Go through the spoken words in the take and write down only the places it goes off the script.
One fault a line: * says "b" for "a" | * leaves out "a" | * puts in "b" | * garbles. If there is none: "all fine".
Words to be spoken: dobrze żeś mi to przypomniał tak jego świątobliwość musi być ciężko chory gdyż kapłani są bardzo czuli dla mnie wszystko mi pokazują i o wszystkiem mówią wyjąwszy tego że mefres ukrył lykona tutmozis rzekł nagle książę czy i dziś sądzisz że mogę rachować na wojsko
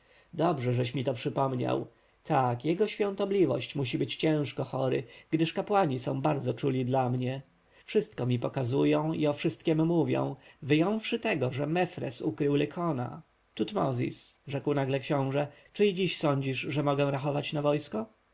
all fine